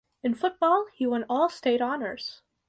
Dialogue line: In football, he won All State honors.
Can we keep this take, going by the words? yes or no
yes